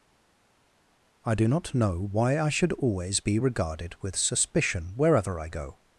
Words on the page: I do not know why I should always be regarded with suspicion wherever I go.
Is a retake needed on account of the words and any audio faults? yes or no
no